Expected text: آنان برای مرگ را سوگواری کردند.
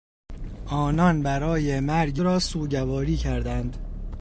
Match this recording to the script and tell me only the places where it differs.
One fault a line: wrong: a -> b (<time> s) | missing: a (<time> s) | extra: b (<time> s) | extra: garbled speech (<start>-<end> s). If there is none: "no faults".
no faults